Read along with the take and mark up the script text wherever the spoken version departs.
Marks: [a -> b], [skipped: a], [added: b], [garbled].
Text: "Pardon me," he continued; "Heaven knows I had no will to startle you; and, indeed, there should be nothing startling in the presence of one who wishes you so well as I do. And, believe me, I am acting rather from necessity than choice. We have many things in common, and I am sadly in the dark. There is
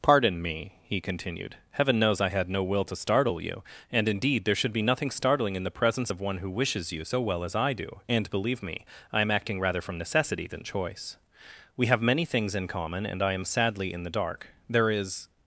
"Pardon me," he continued; "Heaven knows I had no will to startle you; and, indeed, there should be nothing startling in the presence of one who wishes you so well as I do. And, believe me, I am acting rather from necessity than choice. We have many things in common, and I am sadly in the dark. There is